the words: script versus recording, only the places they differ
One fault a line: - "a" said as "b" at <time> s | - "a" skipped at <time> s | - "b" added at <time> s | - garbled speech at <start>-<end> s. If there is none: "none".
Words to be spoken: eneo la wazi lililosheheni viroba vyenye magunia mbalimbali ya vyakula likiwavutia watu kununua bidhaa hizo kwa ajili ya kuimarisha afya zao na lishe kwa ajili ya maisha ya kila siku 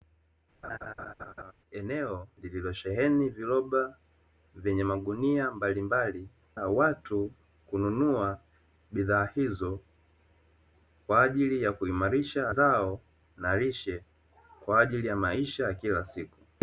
- "la wazi" skipped at 2.3 s
- "ya vyakula likiwavutia" skipped at 6.3 s
- "afya" skipped at 12.5 s